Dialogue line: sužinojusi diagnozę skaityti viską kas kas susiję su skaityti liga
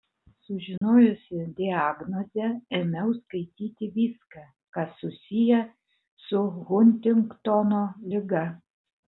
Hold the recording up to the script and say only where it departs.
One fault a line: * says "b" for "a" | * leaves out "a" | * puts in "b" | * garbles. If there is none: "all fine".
* puts in "ėmiau"
* leaves out "kas"
* says "huntingtono" for "skaityti"